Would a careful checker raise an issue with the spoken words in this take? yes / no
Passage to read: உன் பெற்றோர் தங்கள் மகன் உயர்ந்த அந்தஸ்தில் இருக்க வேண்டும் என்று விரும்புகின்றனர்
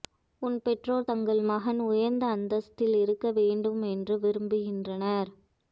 no